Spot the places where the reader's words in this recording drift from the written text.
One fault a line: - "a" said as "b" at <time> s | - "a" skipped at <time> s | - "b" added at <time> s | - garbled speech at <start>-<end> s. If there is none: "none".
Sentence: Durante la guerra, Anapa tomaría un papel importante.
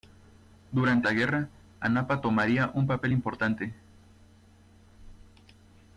none